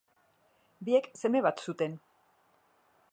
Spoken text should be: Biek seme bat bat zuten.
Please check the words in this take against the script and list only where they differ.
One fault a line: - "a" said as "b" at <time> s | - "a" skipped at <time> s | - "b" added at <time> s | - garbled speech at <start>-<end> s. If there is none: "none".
- "bat" skipped at 1.6 s